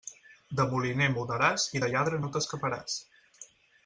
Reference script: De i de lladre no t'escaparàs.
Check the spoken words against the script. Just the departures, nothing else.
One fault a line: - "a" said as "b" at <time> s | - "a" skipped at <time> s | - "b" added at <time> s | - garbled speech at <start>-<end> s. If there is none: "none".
- "moliner mudaràs" added at 0.7 s